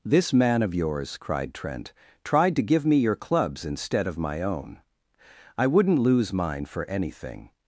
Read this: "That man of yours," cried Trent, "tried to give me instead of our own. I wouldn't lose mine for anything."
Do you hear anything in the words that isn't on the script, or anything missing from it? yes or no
yes